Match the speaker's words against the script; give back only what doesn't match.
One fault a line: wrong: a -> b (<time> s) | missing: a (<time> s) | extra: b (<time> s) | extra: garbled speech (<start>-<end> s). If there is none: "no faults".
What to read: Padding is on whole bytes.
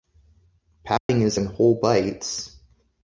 wrong: on -> in (1.3 s)